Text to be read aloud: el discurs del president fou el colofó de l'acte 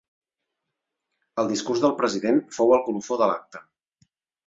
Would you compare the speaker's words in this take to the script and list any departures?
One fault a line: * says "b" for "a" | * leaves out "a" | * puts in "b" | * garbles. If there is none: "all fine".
all fine